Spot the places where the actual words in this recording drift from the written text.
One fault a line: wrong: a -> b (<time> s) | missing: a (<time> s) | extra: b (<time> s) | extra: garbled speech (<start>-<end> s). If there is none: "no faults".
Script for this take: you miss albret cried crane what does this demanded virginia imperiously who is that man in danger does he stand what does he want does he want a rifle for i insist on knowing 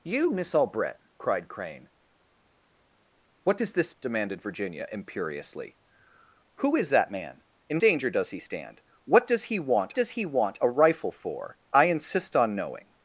no faults